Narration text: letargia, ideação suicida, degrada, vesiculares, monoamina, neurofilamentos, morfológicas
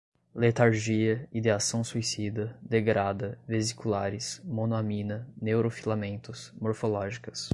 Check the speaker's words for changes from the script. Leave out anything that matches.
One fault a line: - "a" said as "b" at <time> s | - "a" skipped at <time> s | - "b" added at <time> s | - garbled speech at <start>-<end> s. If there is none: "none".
none